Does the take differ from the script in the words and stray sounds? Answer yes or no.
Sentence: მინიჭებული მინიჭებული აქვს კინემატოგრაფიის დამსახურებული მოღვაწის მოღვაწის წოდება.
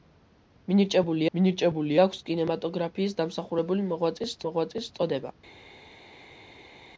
no